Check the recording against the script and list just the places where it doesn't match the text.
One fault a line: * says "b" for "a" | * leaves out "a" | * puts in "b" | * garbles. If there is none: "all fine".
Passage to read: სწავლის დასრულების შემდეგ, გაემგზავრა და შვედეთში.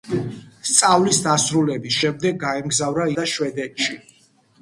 all fine